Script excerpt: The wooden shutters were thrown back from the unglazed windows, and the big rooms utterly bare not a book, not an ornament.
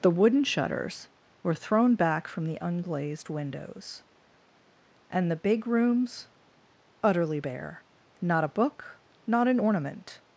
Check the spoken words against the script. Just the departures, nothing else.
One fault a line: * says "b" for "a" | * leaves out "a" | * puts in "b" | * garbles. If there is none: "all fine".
all fine